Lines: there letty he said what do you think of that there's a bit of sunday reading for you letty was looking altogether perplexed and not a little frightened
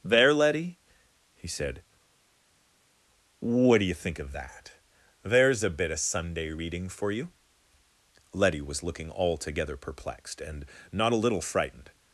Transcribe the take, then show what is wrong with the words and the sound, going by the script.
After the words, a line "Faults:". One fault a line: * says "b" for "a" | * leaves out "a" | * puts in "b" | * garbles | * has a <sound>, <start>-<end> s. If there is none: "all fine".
there letty he said what do you think of that there's a bit of sunday reading for you letty was looking altogether perplexed and not a little frightened
Faults:
all fine